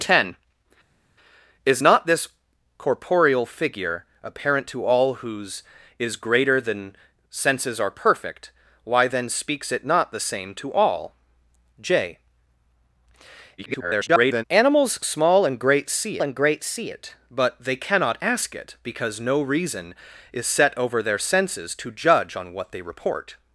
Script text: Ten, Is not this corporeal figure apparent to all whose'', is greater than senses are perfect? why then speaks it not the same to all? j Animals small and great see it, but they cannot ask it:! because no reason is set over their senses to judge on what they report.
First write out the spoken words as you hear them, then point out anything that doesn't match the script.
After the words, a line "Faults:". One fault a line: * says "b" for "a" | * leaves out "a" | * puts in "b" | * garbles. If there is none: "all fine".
Ten, Is not this corporeal figure apparent to all whose'', is greater than senses are perfect? why then speaks it not the same to all? j [garbled] Animals small and great see and great see it, but they cannot ask it:! because no reason is set over their senses to judge on what they report.
Faults:
* garbles
* puts in "and great see"